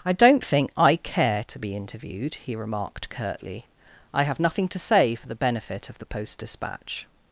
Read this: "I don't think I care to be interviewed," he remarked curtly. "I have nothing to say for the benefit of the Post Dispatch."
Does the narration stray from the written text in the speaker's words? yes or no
no